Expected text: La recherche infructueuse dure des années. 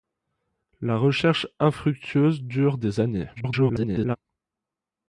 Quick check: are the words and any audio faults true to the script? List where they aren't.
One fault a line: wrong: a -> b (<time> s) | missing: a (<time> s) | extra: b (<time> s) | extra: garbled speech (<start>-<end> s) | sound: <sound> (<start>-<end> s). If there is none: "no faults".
extra: garbled speech (3.4-4.2 s)